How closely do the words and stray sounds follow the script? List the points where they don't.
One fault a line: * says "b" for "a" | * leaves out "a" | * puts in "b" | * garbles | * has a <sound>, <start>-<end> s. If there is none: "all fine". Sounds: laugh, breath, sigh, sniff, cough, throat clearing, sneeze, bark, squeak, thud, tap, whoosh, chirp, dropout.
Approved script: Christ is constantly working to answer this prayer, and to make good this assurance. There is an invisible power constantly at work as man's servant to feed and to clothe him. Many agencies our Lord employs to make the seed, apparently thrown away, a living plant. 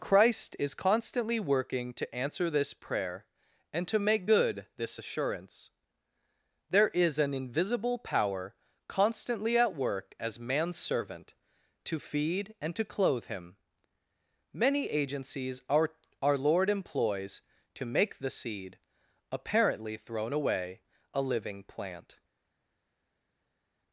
* puts in "our"